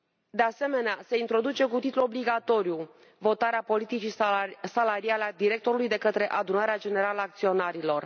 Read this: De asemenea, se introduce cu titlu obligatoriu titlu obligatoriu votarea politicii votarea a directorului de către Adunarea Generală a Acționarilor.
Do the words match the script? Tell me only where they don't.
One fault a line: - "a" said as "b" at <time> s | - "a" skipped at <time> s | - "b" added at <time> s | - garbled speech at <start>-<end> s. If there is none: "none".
- "titlu obligatoriu" skipped at 2.9 s
- "votarea" said as "salariale" at 4.6 s